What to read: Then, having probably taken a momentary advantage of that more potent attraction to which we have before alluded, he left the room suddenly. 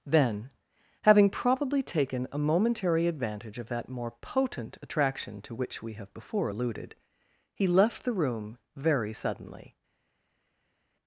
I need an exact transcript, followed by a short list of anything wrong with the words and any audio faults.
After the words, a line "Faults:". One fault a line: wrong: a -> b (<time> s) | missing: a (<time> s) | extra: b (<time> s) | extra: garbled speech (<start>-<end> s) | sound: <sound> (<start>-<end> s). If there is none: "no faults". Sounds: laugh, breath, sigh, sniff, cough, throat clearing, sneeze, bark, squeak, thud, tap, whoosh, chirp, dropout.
Then, having probably taken a momentary advantage of that more potent attraction to which we have before alluded, he left the room very suddenly.
Faults:
extra: very (8.7 s)